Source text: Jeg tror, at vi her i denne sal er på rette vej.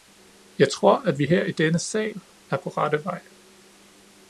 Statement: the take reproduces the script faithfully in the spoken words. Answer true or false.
true